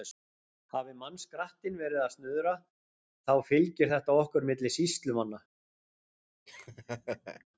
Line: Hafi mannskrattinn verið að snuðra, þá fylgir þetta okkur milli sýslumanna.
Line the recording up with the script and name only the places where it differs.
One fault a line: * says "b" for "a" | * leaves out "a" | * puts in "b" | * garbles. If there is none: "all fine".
all fine